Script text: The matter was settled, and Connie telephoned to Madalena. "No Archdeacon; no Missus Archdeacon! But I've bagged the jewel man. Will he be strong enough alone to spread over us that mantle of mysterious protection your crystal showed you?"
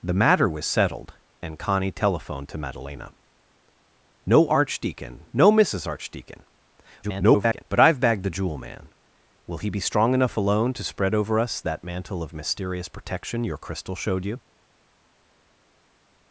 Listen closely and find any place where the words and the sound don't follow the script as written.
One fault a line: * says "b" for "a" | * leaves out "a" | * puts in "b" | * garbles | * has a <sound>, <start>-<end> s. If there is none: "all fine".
* garbles